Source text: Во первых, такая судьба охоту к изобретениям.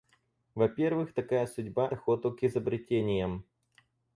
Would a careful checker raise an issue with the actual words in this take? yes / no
no